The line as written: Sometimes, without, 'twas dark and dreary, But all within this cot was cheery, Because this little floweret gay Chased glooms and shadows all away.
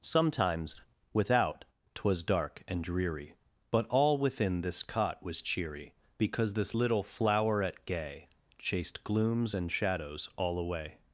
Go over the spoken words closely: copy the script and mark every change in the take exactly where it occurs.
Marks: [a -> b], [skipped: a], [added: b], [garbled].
Sometimes, without, 'twas dark and dreary, But all within this cot was cheery, Because this little floweret gay Chased glooms and shadows all away.